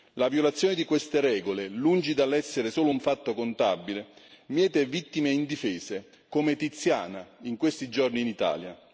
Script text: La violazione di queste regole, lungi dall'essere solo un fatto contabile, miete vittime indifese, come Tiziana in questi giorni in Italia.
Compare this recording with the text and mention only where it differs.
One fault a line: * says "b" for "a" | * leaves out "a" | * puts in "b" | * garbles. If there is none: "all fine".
all fine